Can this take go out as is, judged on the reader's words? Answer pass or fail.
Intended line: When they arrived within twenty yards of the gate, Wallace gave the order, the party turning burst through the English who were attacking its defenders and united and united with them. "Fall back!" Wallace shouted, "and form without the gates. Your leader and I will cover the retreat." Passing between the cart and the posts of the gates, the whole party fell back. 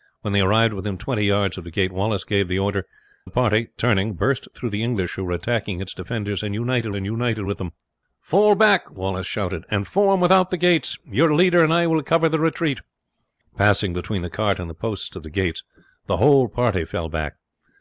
pass